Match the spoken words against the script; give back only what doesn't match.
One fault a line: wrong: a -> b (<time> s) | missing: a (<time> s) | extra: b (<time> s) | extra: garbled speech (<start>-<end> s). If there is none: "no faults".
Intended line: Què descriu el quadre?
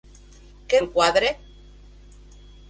missing: descriu (0.8 s)